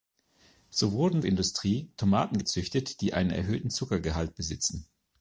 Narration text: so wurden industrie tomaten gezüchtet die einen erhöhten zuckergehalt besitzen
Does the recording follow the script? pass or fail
pass